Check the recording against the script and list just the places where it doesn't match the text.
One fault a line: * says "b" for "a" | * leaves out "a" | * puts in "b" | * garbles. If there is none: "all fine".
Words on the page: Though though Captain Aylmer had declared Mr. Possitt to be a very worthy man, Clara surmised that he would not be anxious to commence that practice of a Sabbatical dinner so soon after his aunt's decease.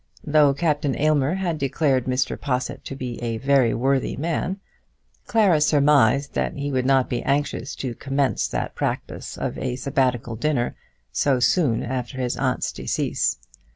* leaves out "though"